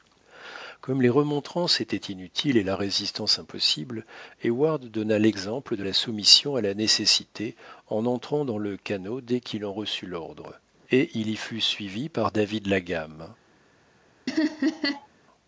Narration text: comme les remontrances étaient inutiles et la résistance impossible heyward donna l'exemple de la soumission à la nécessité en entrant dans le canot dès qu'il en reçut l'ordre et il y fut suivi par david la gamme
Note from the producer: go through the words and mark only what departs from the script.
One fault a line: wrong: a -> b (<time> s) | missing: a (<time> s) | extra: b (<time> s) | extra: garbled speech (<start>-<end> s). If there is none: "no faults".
no faults